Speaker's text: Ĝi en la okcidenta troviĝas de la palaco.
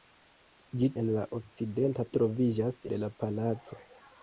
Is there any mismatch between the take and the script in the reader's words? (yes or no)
no